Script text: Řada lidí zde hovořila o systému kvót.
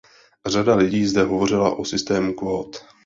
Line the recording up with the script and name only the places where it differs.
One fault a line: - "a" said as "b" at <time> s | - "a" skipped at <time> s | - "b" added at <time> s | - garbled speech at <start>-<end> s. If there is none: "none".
none